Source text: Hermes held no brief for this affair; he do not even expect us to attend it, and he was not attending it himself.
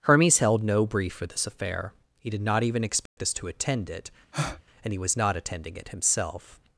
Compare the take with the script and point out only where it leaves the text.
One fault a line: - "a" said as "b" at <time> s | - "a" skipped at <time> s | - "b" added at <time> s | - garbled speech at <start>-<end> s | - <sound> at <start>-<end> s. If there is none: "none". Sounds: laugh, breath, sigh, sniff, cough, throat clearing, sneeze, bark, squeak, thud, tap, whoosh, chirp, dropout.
- "do" said as "did" at 2.3 s
- dropout at 3.1-3.2 s
- breath at 4.3-4.6 s